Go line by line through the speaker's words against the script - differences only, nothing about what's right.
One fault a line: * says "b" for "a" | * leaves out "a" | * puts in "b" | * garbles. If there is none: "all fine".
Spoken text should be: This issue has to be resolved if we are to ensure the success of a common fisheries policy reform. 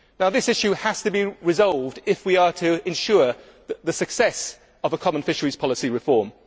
all fine